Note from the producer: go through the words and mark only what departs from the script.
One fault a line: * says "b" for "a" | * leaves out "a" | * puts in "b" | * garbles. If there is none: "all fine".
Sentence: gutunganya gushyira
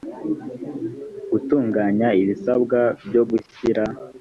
* puts in "ibisabwa byo"